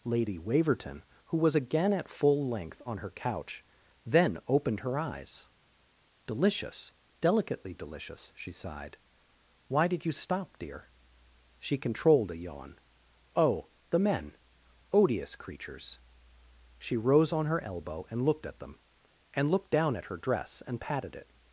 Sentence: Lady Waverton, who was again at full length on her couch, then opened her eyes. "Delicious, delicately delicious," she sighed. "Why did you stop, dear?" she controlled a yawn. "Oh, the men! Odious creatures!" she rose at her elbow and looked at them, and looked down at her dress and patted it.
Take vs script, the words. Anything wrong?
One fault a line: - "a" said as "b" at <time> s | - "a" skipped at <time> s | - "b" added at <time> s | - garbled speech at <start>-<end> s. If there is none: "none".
- "at" said as "on" at 17.3 s